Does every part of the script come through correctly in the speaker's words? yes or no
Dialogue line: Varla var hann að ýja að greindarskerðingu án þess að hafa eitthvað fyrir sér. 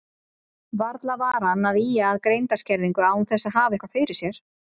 yes